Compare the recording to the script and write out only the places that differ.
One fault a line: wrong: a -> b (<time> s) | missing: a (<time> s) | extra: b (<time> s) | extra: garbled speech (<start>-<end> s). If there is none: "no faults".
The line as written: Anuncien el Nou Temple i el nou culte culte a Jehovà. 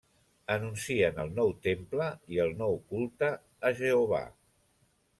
missing: culte (3.3 s)